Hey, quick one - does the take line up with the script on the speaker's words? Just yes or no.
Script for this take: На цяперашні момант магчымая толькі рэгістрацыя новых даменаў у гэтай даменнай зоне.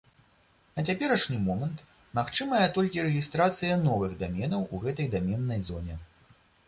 yes